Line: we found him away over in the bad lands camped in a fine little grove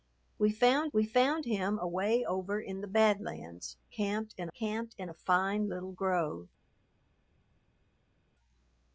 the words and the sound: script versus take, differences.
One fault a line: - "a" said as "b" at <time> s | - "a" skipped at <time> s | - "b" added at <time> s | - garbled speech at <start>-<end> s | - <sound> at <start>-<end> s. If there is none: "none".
- "we found" added at 0.9 s
- "camped in" added at 4.5 s